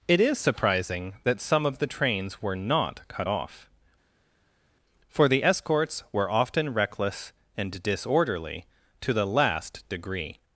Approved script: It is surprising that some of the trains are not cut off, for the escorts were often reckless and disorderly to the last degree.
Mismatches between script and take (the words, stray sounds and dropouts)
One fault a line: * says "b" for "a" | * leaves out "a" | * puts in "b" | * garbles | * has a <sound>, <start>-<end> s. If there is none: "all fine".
* says "were" for "are"